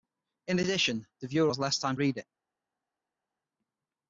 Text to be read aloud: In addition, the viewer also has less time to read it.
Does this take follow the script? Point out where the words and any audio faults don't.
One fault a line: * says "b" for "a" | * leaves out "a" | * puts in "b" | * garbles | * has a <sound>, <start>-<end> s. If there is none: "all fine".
* leaves out "also"
* leaves out "to"